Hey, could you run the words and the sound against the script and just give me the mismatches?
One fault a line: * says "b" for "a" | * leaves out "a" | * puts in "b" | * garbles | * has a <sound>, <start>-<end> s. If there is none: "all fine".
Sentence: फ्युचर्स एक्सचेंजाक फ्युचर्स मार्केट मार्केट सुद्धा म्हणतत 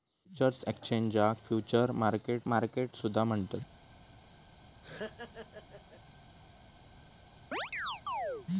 * has a laugh, 4.8-6.0 s
* has a chirp, 7.5-8.5 s